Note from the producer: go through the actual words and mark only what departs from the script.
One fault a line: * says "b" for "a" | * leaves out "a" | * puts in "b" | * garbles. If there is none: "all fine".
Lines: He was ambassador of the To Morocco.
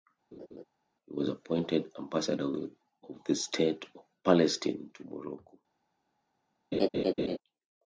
* puts in "appointed"
* puts in "State of Palestine"